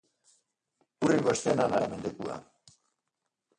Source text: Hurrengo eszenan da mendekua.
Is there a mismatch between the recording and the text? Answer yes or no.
no